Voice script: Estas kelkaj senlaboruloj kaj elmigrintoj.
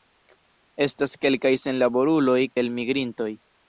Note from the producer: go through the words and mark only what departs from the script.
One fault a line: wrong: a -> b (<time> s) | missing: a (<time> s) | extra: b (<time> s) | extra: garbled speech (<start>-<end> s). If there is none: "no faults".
missing: kaj (2.4 s)